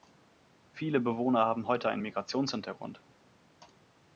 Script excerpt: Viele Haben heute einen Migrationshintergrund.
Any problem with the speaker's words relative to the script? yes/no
yes